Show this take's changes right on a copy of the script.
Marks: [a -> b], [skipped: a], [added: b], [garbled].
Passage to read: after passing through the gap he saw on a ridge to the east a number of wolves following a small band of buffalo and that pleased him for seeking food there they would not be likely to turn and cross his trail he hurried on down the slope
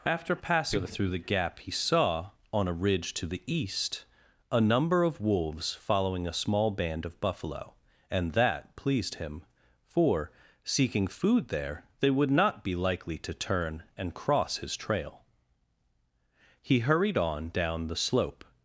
after passing through the gap he saw on a ridge to the east a number of wolves following a small band of buffalo and that pleased him for seeking food there they would not be likely to turn and cross his trail he hurried on down the slope